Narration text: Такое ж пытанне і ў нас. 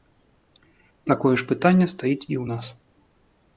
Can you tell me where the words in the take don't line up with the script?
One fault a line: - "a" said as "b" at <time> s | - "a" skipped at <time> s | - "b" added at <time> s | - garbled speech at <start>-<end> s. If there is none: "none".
- "стаіць" added at 1.9 s